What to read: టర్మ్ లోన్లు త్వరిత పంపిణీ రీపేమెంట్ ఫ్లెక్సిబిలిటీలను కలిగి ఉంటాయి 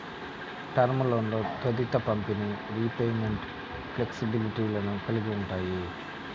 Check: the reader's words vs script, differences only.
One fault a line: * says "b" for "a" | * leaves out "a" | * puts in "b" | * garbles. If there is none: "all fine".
all fine